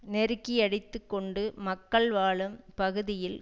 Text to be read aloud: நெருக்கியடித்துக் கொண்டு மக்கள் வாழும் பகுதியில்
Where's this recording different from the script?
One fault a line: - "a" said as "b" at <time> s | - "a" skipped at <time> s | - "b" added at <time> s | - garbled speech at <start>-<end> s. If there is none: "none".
none